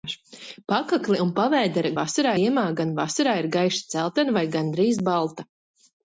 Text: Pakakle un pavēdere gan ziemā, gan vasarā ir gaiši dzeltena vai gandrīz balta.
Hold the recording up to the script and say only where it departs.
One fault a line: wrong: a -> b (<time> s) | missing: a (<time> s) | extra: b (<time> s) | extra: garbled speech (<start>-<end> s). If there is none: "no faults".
wrong: gan -> vasarā (2.0 s)